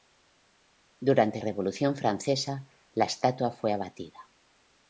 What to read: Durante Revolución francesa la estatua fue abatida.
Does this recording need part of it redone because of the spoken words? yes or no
no